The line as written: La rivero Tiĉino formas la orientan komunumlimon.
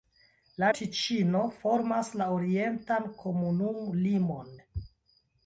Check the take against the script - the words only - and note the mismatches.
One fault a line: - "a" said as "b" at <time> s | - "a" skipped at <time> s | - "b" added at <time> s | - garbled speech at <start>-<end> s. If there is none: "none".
- "rivero" skipped at 0.7 s